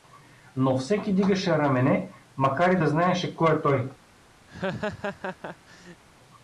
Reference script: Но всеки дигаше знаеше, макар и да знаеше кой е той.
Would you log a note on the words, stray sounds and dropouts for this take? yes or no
yes